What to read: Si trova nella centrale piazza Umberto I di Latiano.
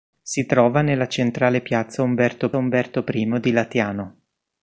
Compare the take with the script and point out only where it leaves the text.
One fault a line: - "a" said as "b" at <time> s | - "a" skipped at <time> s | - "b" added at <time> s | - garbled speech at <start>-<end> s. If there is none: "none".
- "Umberto" added at 2.6 s